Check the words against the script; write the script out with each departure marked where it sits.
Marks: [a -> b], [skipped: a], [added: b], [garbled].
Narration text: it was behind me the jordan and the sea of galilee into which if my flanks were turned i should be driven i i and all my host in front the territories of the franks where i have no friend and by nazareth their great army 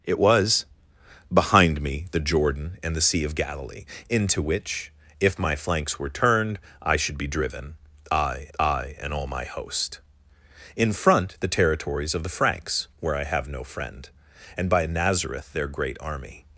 it was behind me the jordan and the sea of galilee into which if my flanks were turned i should be driven i i and all my host in front the territories of the franks where i have no friend and by nazareth their great army